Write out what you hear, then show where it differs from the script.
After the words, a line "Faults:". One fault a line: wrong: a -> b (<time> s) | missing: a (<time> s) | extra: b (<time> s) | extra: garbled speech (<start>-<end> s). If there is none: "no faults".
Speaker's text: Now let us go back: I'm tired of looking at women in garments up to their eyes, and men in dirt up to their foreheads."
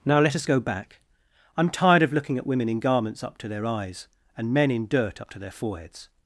Now let us go back: I'm tired of looking at women in garments up to their eyes, and men in dirt up to their foreheads."
Faults:
no faults